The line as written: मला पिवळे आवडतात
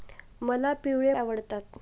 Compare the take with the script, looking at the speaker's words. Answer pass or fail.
pass